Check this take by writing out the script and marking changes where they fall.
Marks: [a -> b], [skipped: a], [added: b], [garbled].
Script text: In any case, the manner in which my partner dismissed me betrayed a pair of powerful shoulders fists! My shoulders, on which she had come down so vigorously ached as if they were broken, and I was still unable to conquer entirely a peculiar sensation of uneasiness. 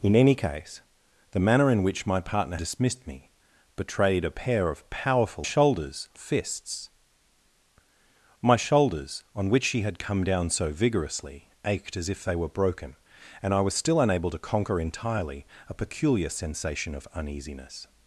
In any case, the manner in which my partner dismissed me betrayed a pair of powerful shoulders fists! My shoulders, on which she had come down so vigorously ached as if they were broken, and I was still unable to conquer entirely a peculiar sensation of uneasiness.